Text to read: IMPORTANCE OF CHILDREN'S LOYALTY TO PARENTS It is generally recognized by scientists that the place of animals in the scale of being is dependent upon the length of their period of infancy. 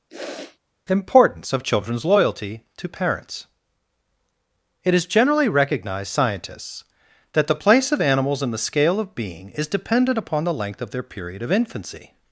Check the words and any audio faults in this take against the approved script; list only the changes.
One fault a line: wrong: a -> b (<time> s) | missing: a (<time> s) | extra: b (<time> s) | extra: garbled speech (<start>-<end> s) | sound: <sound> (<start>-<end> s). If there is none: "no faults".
sound: sniff (0.1-0.6 s)
missing: by (6.1 s)